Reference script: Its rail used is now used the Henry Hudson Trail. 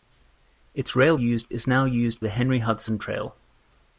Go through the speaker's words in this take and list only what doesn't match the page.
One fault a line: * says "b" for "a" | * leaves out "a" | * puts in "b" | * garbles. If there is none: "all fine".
all fine